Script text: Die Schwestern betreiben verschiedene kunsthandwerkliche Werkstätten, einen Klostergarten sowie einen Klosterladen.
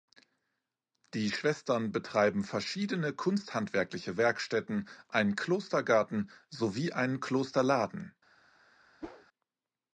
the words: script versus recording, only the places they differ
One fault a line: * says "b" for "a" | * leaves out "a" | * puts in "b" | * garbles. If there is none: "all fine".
all fine